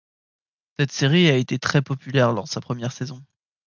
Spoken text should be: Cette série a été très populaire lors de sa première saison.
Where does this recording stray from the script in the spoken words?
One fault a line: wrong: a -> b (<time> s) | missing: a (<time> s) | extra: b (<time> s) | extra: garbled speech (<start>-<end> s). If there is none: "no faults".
no faults